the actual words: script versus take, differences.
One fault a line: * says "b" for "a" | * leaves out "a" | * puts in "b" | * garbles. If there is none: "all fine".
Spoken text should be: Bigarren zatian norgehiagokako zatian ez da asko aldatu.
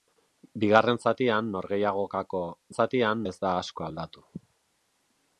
all fine